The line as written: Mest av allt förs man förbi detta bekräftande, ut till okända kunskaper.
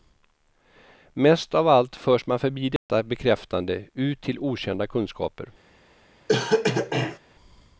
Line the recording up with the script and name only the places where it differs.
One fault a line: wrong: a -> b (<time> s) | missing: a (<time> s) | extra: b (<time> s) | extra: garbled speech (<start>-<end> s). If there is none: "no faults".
no faults